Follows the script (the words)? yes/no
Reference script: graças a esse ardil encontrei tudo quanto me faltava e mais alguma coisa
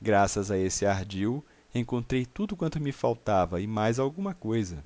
yes